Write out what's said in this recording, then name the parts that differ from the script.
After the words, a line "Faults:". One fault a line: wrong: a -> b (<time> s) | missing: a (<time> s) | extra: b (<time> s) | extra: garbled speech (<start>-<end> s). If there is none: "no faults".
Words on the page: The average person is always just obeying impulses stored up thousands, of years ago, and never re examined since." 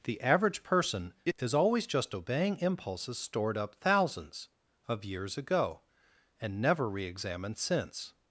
The average person is always just obeying impulses stored up thousands, of years ago, and never re examined since."
Faults:
no faults